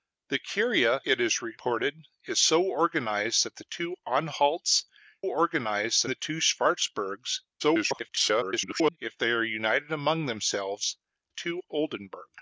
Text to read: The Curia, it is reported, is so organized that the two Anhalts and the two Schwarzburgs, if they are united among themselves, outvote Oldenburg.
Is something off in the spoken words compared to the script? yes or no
yes